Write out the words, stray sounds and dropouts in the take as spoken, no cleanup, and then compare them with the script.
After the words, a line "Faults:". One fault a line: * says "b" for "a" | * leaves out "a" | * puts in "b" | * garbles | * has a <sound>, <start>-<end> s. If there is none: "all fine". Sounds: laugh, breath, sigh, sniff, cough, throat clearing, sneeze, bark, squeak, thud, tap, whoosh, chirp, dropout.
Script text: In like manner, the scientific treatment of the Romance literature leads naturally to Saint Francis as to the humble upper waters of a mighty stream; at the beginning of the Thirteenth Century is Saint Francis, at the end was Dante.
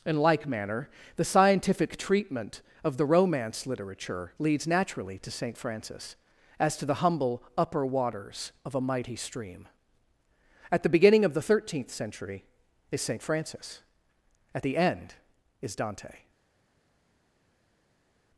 In like manner, the scientific treatment of the Romance literature leads naturally to Saint Francis as to the humble upper waters of a mighty stream; at the beginning of the Thirteenth Century is Saint Francis, at the end is Dante.
Faults:
* says "is" for "was"